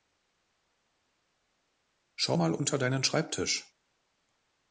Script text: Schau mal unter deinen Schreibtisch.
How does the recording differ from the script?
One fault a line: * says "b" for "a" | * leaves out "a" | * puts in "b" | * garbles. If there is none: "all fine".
all fine